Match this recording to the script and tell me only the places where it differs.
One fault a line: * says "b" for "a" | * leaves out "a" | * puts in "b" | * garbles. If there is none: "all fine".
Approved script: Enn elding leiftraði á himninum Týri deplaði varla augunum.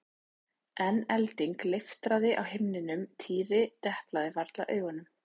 all fine